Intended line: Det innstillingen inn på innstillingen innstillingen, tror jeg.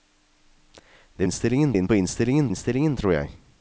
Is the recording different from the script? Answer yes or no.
no